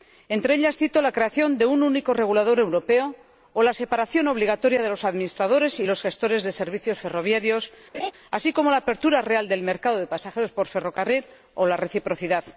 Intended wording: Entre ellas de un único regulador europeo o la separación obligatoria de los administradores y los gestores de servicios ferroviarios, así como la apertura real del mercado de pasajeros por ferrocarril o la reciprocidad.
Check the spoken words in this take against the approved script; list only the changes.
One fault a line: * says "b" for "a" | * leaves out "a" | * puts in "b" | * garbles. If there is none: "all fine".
* puts in "cito la creación"